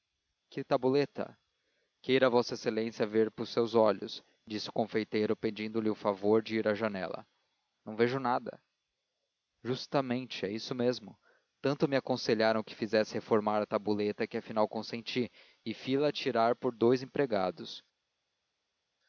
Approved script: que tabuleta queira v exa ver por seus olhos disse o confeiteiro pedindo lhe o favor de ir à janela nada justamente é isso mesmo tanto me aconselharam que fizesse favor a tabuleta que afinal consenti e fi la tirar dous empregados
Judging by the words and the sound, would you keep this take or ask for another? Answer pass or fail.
fail